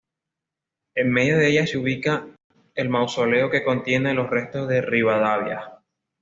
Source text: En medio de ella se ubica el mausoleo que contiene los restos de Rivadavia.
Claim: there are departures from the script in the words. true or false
false